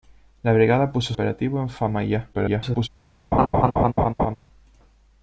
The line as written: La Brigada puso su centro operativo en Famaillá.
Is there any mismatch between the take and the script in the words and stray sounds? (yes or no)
yes